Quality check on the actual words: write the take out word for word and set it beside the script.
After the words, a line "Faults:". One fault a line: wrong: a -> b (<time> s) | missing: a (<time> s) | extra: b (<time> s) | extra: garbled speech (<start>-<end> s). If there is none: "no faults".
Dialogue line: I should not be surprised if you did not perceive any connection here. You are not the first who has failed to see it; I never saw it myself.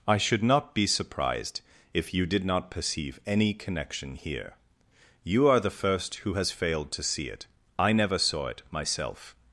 I should not be surprised if you did not perceive any connection here. You are the first who has failed to see it; I never saw it myself.
Faults:
missing: not (5.6 s)